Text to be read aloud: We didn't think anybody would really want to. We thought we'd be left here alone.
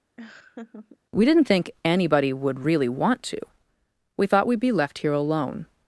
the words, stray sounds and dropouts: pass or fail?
fail